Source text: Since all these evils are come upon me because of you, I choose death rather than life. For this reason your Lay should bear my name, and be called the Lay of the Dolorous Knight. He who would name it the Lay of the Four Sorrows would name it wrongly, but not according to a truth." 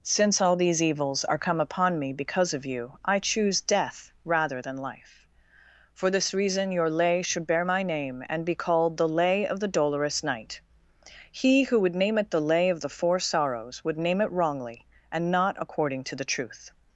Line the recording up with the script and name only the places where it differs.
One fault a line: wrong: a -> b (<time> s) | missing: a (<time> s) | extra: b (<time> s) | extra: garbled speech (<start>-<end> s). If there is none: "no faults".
wrong: but -> and (15.1 s)
wrong: a -> the (16.1 s)